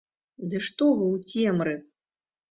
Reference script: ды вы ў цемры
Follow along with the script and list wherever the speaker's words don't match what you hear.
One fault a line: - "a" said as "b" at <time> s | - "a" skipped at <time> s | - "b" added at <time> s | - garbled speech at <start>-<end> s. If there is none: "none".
- "што" added at 0.7 s